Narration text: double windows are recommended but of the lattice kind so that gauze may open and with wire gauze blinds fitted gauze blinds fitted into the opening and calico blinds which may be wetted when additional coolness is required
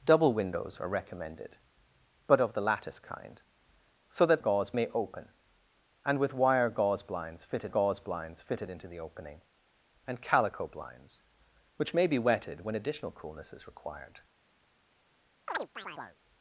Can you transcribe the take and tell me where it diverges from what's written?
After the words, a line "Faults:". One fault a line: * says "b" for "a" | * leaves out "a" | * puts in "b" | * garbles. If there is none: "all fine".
double windows are recommended but of the lattice kind so that gauze may open and with wire gauze blinds fitted gauze blinds fitted into the opening and calico blinds which may be wetted when additional coolness is required
Faults:
all fine